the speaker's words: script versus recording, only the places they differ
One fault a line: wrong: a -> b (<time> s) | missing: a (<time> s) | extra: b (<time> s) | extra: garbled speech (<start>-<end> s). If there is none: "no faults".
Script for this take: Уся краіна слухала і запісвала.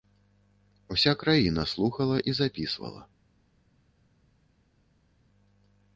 no faults